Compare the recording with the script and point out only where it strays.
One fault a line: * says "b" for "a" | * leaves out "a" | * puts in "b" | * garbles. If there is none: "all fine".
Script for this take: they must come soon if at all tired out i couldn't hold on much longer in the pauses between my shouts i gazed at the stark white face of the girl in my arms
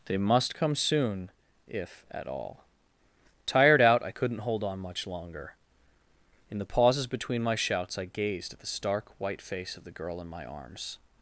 all fine